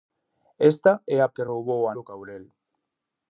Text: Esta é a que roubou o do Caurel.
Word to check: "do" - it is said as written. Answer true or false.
true